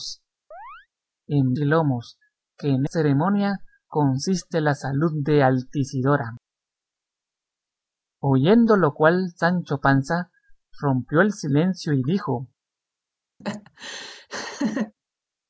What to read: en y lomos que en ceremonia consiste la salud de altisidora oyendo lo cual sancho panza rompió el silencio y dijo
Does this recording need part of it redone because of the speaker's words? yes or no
no